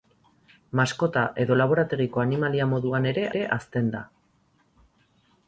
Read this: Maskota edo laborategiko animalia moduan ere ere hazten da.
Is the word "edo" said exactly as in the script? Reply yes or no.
yes